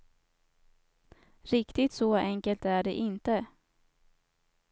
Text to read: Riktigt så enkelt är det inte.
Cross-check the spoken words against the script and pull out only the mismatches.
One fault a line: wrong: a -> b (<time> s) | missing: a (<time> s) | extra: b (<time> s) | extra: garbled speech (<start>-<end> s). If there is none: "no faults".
no faults